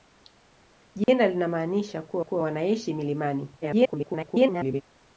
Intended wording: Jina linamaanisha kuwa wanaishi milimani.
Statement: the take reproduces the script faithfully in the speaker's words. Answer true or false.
false